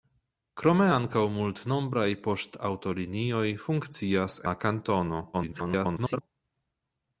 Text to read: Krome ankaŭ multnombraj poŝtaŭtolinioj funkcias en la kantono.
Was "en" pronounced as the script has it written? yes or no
no